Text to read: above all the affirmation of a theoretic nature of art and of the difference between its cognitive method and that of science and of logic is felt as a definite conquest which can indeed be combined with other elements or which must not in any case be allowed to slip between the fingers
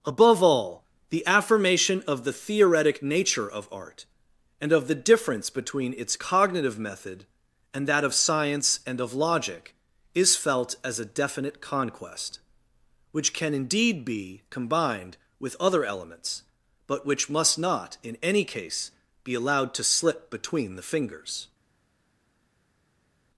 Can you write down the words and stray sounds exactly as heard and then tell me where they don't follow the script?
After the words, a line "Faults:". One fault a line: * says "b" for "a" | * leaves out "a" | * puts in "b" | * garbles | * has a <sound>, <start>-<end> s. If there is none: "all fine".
above all the affirmation of the theoretic nature of art and of the difference between its cognitive method and that of science and of logic is felt as a definite conquest which can indeed be combined with other elements but which must not in any case be allowed to slip between the fingers
Faults:
* says "the" for "a"
* says "but" for "or"